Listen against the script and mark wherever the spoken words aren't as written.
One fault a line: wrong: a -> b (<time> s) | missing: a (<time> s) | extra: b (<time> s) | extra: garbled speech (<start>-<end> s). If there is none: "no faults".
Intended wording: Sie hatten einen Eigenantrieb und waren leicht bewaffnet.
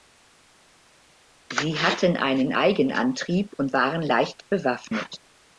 no faults